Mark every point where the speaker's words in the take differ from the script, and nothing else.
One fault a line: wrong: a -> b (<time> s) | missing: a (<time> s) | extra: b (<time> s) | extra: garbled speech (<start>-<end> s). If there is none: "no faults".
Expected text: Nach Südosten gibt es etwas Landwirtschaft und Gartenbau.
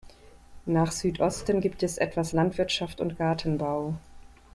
no faults